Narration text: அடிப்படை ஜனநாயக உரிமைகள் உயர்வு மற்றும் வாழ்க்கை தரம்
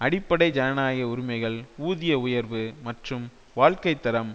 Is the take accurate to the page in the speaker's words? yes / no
no